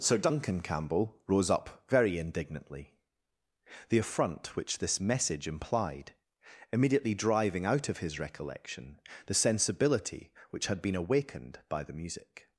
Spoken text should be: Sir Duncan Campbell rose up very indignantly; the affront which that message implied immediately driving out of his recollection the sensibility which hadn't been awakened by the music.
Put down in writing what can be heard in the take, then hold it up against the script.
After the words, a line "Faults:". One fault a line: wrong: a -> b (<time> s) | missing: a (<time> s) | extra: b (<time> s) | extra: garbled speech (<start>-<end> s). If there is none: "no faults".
Sir Duncan Campbell rose up very indignantly; the affront which this message implied immediately driving out of his recollection the sensibility which had been awakened by the music.
Faults:
wrong: that -> this (4.8 s)
wrong: hadn't -> had (10.7 s)